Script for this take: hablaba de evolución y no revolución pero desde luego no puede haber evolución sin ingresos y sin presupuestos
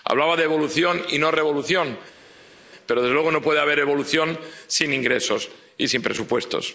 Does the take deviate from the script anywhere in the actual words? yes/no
no